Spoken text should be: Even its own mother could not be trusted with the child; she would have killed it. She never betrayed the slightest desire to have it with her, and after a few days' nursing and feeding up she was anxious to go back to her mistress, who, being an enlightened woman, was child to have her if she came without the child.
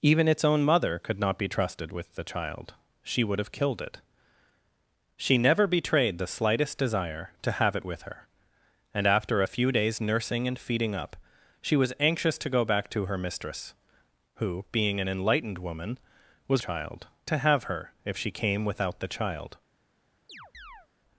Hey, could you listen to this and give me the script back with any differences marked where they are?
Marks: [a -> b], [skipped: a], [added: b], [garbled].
Even its own mother could not be trusted with the child; she would have killed it. She never betrayed the slightest desire to have it with her, and after a few days' nursing and feeding up she was anxious to go back to her mistress, who, being an enlightened woman, was child to have her if she came without the child.